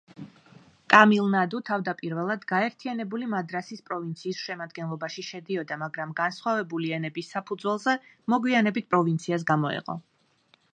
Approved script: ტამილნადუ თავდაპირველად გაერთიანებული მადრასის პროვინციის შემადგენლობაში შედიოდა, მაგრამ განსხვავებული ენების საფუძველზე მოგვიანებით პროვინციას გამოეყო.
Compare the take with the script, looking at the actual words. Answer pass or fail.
pass